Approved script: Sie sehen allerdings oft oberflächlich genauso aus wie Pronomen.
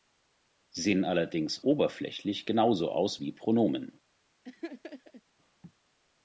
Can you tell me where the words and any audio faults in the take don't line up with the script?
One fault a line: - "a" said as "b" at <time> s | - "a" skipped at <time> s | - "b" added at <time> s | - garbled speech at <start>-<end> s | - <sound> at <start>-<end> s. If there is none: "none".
- "oft" skipped at 1.6 s
- laugh at 4.4-5.2 s